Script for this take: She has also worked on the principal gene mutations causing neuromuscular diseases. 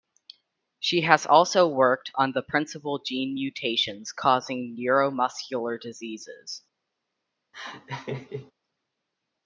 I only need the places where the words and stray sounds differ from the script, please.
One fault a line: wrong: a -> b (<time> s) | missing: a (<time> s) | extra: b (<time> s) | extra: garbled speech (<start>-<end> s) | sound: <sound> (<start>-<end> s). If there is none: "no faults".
sound: laugh (7.5-8.5 s)